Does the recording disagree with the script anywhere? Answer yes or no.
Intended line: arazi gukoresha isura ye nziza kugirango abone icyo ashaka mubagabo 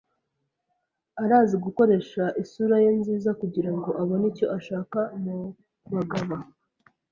no